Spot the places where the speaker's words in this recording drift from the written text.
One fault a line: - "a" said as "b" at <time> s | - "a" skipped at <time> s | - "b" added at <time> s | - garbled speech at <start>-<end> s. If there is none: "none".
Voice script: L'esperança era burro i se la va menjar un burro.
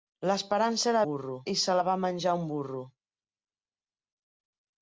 none